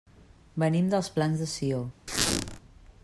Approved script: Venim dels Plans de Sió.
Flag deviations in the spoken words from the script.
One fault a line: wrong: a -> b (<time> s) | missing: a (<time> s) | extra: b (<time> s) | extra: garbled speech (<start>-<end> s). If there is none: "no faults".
no faults